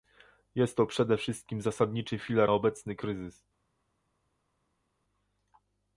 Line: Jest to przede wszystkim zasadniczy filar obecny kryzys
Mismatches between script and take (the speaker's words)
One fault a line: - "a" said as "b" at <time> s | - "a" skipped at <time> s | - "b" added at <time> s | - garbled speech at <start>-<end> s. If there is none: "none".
none